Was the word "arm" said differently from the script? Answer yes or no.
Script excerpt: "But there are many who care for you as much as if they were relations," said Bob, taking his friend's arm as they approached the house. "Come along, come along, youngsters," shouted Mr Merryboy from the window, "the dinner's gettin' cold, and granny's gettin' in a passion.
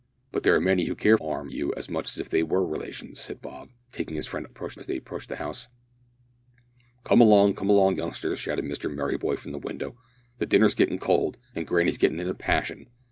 yes